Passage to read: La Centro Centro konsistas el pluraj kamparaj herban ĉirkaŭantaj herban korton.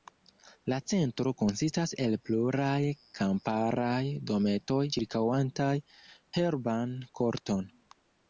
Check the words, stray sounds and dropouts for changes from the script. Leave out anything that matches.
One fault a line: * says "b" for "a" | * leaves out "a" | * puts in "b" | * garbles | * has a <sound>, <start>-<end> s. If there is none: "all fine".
* leaves out "Centro"
* says "dometoj" for "herban"